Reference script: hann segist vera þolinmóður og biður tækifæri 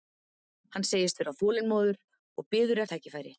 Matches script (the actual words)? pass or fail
pass